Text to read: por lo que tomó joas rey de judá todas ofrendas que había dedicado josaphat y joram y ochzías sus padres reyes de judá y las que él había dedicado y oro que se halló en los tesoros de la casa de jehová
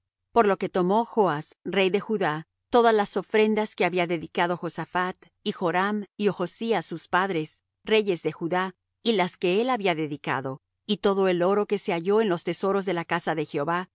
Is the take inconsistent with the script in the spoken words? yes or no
yes